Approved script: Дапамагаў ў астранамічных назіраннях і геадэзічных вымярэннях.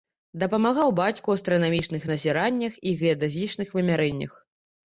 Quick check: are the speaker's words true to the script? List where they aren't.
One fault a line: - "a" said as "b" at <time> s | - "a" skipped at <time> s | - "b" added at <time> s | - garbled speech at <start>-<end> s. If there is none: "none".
- "бацьку" added at 1.0 s